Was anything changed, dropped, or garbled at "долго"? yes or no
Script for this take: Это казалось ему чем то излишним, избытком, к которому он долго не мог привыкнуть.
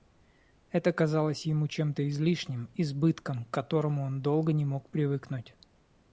no